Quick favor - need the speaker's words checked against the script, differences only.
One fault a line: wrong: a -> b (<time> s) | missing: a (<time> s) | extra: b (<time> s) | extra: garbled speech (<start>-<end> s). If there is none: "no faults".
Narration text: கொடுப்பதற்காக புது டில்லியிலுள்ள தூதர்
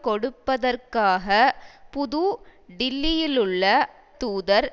no faults